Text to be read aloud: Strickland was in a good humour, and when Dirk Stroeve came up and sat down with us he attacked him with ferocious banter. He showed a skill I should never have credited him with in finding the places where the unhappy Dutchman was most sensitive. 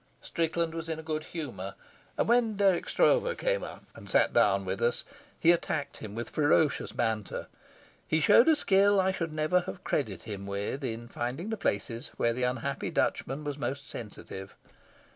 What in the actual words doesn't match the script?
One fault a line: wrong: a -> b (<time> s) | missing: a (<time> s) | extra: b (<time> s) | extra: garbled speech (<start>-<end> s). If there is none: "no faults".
no faults